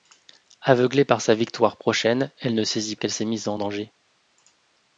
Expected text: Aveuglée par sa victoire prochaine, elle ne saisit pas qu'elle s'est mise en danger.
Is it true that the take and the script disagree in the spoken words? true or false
true